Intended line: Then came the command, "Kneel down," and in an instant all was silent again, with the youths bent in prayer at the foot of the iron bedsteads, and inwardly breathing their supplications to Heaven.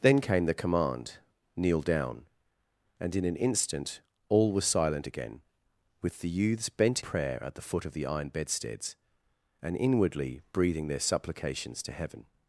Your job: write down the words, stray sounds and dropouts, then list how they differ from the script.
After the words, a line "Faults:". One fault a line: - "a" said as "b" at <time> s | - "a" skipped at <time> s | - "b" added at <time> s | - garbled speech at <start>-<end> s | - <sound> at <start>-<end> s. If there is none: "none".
Then came the command, "Kneel down," and in an instant all was silent again, with the youths bent prayer at the foot of the iron bedsteads, and inwardly breathing their supplications to Heaven.
Faults:
- "in" skipped at 7.0 s